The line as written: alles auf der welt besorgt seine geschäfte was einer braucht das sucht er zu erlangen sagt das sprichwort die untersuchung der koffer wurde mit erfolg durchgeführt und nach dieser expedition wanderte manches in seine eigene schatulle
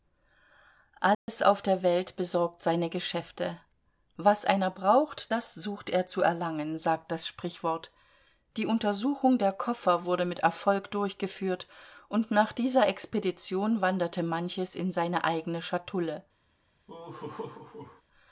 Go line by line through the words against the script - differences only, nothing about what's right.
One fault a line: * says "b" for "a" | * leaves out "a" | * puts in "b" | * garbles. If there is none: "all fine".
all fine